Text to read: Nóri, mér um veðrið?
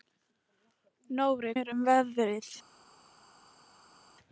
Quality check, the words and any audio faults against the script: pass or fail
pass